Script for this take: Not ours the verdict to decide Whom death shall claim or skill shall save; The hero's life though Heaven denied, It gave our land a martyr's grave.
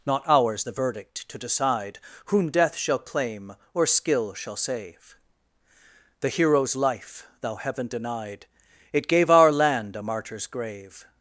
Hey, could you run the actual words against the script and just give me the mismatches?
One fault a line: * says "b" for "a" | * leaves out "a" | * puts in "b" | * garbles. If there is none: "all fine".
* says "thou" for "though"